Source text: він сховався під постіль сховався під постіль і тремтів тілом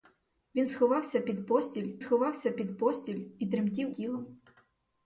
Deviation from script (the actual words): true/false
false